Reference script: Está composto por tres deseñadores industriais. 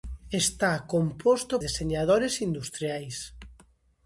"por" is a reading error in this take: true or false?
true